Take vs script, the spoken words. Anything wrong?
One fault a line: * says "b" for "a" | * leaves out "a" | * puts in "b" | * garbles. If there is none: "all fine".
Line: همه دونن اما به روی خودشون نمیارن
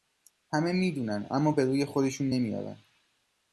* puts in "می"